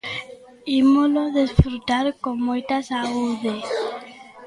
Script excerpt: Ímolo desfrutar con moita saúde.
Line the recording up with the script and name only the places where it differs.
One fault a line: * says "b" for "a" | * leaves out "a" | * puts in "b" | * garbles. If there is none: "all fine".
all fine